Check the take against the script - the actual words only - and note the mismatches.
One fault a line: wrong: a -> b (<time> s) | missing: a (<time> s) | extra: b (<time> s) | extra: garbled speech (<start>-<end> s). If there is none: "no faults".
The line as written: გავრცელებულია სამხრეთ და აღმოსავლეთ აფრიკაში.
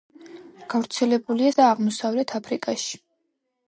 missing: სამხრეთ (1.5 s)